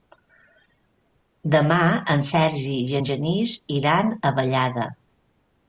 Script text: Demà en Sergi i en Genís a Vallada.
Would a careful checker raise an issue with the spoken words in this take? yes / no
yes